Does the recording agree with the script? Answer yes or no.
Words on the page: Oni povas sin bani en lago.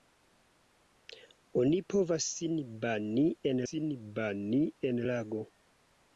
no